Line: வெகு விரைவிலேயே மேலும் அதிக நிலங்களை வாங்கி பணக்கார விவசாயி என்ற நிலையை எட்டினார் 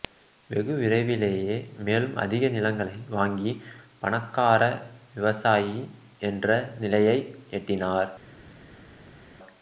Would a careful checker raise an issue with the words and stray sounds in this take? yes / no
no